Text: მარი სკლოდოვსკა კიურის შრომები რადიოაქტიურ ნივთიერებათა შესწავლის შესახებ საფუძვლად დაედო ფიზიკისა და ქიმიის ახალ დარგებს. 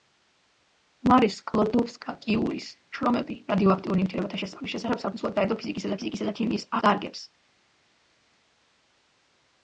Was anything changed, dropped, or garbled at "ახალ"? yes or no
yes